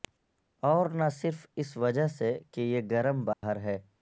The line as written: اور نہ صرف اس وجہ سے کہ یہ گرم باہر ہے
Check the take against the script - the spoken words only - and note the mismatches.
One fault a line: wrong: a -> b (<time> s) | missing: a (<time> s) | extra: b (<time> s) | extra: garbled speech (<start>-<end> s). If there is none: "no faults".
no faults